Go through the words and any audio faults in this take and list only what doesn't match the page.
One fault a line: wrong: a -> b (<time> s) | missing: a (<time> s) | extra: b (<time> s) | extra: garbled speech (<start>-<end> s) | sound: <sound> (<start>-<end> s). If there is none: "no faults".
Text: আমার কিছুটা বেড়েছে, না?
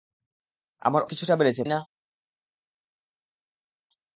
no faults